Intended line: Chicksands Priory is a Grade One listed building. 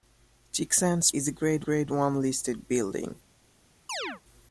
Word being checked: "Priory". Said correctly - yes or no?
no